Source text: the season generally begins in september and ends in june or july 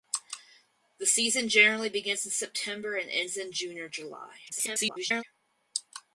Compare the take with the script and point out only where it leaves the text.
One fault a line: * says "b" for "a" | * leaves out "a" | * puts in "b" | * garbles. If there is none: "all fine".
* garbles